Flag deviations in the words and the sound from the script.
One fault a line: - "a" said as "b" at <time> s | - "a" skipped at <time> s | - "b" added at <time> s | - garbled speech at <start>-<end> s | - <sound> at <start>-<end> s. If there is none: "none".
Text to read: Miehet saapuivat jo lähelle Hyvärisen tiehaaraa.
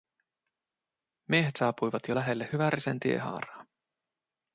none